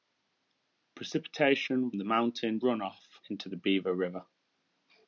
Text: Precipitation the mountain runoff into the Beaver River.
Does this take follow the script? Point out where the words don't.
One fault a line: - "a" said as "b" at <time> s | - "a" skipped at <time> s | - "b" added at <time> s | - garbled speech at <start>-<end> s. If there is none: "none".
none